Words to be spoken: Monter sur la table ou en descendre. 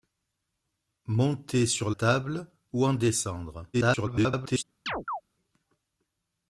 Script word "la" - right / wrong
wrong